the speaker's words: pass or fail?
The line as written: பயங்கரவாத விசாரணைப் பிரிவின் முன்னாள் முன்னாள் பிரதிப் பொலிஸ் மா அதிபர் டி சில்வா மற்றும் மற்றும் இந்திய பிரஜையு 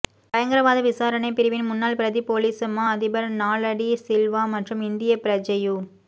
fail